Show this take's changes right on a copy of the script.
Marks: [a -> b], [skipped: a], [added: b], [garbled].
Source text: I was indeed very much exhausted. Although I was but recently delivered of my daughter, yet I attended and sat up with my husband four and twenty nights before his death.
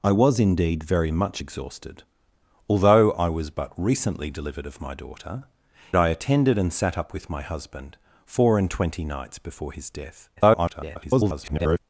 I was indeed very much exhausted. Although I was but recently delivered of my daughter, [skipped: yet] I attended and sat up with my husband four and twenty nights before his death. [garbled]